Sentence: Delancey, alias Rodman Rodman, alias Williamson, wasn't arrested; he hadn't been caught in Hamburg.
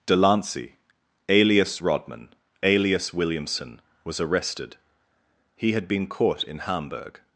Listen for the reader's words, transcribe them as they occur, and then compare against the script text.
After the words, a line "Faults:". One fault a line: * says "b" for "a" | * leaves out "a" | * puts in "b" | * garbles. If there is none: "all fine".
Delancey, alias Rodman, alias Williamson, was arrested; he had been caught in Hamburg.
Faults:
* leaves out "Rodman"
* says "was" for "wasn't"
* says "had" for "hadn't"